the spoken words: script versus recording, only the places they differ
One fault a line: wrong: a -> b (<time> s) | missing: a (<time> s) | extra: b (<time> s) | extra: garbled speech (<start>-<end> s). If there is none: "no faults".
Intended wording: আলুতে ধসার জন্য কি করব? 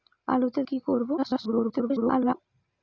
missing: ধসার জন্য (0.6 s)
extra: garbled speech (1.2-2.3 s)